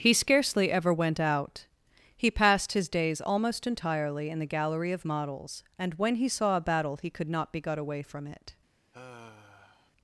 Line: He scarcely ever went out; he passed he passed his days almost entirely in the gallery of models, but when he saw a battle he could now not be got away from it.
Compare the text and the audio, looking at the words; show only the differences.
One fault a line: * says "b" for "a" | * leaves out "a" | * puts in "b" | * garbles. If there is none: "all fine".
* leaves out "he passed"
* says "and" for "but"
* leaves out "now"